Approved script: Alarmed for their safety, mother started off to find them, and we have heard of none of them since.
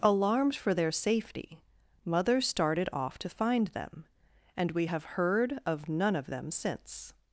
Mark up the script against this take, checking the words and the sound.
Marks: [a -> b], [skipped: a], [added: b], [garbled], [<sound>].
Alarmed for their safety, mother started off to find them, and we have heard of none of them since.